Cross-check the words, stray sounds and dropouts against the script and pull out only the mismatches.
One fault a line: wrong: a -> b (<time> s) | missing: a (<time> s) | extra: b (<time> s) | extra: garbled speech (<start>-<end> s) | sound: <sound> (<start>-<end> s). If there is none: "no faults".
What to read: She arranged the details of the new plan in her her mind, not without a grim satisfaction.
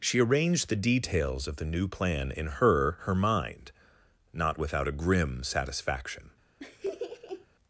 sound: laugh (6.6-7.5 s)